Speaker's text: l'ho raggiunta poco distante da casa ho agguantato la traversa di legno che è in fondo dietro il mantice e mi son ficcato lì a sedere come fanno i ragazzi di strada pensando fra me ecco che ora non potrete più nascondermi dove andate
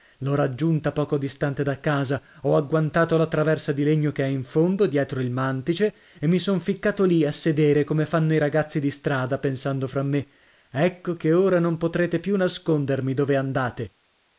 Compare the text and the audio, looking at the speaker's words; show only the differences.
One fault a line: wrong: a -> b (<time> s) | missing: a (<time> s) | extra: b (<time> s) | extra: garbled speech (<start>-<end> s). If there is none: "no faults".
no faults